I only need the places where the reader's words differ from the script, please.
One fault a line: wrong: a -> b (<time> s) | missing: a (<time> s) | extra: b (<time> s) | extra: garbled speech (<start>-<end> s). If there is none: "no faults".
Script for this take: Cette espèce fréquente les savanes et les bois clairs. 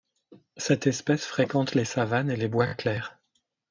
no faults